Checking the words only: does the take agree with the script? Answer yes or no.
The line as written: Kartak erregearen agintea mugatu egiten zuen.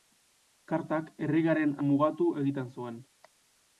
no